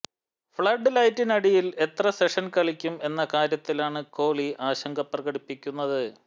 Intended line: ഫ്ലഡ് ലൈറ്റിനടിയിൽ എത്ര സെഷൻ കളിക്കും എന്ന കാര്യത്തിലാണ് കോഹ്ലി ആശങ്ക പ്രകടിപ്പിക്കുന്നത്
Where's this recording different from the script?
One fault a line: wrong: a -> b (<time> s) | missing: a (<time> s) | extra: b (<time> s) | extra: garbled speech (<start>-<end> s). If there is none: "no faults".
no faults